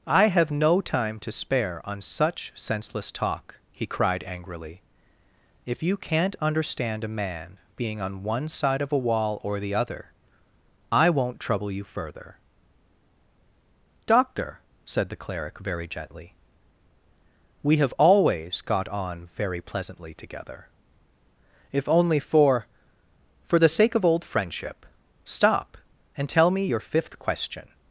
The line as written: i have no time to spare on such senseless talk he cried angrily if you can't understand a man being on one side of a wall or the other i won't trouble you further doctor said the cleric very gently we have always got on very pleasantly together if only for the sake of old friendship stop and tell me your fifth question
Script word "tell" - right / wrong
right